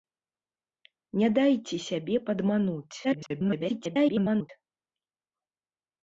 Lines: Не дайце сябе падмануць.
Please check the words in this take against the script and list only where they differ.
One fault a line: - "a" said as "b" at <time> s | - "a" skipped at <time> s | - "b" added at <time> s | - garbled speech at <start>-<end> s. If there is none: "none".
- garbled speech at 3.0-4.5 s